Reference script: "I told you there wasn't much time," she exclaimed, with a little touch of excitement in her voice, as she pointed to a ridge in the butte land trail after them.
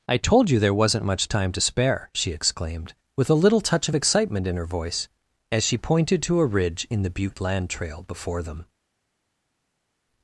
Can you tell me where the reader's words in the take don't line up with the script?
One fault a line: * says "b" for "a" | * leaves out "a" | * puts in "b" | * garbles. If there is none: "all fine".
* puts in "to spare"
* says "before" for "after"